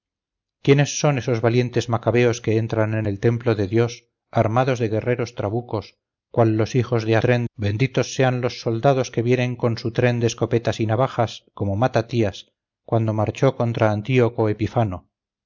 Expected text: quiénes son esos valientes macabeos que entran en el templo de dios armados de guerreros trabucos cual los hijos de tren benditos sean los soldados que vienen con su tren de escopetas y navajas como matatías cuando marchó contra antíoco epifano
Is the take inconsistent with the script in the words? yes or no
no